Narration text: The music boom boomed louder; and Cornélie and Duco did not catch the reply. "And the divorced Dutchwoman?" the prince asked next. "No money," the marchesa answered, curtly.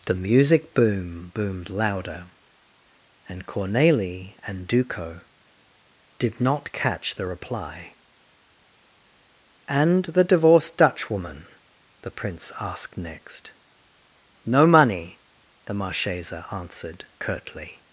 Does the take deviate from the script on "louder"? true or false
false